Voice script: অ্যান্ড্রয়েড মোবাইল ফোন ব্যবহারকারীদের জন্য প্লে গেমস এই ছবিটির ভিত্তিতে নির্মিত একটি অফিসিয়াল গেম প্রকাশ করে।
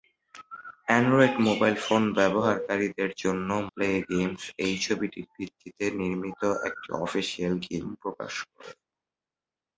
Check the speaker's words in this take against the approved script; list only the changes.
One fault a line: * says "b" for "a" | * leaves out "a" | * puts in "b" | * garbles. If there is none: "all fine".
all fine